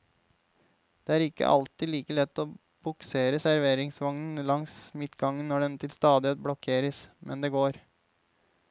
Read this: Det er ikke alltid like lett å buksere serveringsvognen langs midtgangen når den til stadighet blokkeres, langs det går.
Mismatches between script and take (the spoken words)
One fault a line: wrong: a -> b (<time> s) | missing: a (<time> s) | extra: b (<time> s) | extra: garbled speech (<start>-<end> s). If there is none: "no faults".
wrong: langs -> men (7.2 s)